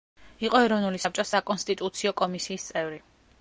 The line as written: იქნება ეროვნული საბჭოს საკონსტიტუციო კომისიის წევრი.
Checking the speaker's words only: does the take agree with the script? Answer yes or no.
no